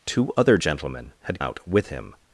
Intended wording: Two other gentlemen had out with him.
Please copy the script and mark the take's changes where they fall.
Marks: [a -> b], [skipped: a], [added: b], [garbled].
Two other gentlemen had out with him.